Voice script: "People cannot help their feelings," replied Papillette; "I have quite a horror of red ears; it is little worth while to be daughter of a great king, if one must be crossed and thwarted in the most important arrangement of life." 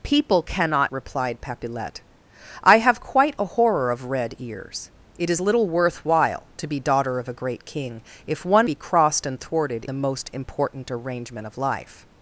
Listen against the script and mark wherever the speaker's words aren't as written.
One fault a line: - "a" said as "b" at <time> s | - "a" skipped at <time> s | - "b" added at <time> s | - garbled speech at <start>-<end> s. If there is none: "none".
- "help their feelings" skipped at 0.9 s
- "must" skipped at 8.7 s
- "in" skipped at 9.8 s